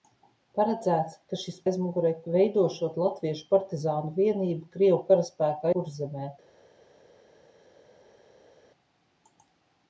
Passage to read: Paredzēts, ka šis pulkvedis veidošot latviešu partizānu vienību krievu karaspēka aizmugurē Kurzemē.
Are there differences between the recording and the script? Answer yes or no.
yes